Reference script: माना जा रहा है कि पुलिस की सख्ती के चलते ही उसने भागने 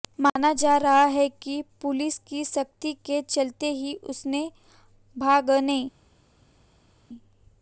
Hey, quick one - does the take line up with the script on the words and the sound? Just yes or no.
yes